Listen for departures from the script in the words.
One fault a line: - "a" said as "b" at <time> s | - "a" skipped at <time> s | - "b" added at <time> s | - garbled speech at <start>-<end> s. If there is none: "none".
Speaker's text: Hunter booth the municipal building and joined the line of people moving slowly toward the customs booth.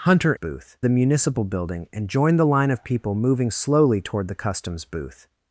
none